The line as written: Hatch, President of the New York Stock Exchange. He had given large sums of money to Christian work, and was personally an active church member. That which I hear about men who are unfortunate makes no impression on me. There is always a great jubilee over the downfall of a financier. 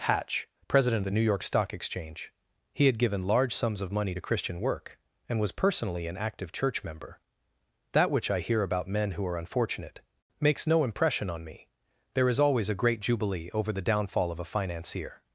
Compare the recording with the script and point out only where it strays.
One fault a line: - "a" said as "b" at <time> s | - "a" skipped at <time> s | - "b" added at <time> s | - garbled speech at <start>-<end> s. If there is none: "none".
- "of" skipped at 1.1 s